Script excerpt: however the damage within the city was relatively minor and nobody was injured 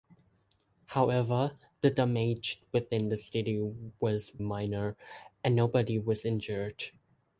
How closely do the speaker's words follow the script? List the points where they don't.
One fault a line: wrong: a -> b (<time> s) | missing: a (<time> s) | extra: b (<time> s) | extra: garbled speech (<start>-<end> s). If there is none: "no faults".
missing: relatively (4.3 s)